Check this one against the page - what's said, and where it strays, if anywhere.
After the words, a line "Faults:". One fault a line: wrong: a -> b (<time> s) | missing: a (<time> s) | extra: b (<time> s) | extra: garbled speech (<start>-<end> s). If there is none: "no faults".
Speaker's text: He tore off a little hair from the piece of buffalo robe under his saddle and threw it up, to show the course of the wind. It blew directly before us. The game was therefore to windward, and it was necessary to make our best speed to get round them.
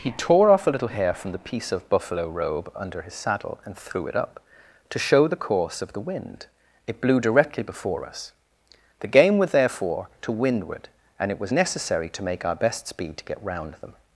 He tore off a little hair from the piece of buffalo robe under his saddle and threw it up, to show the course of the wind. It blew directly before us. The game was therefore to windward, and it was necessary to make our best speed to get round them.
Faults:
no faults